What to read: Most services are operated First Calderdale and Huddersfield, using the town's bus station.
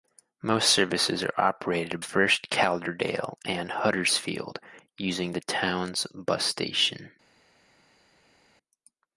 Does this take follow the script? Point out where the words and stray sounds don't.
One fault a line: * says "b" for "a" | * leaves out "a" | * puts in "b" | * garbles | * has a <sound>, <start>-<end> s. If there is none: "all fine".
all fine